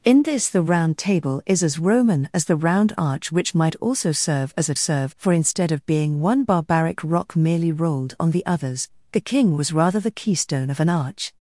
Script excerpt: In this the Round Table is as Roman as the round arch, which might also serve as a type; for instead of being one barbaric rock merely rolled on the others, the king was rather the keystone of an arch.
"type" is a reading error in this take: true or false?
true